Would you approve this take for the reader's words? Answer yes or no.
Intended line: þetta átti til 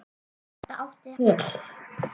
yes